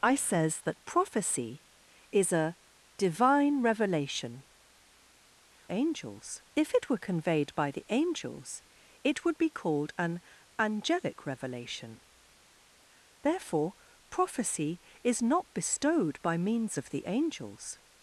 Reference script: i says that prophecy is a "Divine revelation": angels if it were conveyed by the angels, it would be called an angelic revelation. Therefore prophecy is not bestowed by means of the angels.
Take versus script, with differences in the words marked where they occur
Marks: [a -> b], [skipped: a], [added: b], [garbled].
i says that prophecy is a "Divine revelation": angels if it were conveyed by the angels, it would be called an angelic revelation. Therefore prophecy is not bestowed by means of the angels.